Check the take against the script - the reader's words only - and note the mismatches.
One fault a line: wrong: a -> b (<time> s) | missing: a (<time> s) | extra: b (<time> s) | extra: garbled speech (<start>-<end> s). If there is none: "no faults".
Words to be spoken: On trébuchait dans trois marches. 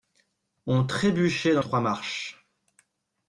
no faults